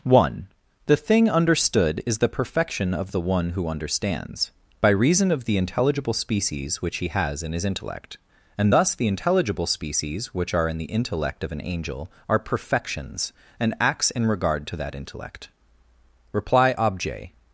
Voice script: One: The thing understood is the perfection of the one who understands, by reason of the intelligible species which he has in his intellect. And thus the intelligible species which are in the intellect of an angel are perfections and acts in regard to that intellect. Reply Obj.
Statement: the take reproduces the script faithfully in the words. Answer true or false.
true